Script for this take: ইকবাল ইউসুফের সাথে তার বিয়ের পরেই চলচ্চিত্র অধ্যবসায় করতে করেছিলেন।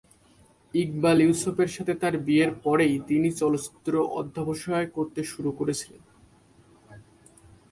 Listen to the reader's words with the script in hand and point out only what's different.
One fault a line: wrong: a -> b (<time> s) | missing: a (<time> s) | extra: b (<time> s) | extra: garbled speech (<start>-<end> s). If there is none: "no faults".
extra: তিনি (3.1 s)
extra: শুরু (5.2 s)